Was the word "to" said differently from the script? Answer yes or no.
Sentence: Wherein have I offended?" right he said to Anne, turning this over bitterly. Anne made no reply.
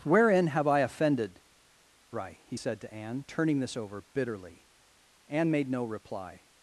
no